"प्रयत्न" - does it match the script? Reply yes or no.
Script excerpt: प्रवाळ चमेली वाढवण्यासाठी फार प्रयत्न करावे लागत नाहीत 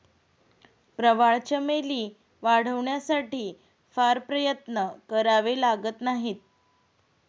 yes